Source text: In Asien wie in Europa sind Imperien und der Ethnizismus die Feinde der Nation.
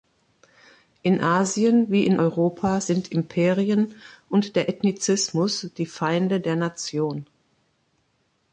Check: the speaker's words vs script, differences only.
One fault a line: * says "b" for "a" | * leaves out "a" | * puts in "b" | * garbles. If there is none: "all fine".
all fine